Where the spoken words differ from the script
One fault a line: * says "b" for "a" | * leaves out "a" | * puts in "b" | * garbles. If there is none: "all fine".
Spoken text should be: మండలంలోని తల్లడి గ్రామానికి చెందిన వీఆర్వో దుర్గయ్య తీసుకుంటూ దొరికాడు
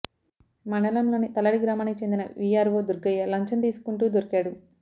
* puts in "లంచం"